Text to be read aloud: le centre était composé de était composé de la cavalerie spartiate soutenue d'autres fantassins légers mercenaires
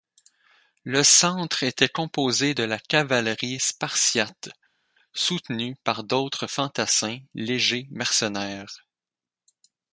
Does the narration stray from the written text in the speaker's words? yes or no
yes